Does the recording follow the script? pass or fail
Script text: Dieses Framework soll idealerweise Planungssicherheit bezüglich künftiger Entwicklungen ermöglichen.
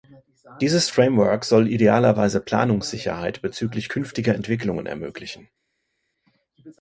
pass